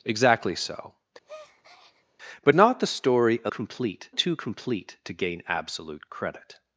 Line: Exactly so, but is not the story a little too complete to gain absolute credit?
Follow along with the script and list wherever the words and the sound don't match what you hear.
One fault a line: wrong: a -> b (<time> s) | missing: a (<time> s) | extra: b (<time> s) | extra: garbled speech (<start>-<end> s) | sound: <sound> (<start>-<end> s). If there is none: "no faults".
sound: breath (1.3-2.1 s)
missing: is (2.6 s)
wrong: little -> complete (3.5 s)